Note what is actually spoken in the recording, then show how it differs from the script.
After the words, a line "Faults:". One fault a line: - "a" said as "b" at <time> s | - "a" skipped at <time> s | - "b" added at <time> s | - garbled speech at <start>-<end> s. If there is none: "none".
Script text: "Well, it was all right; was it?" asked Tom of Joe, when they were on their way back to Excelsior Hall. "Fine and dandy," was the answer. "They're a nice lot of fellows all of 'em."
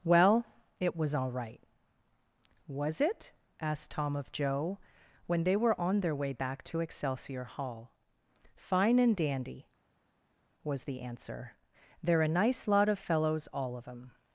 "Well, it was all right; was it?" asked Tom of Joe, when they were on their way back to Excelsior Hall. "Fine and dandy," was the answer. "They're a nice lot of fellows all of 'em."
Faults:
none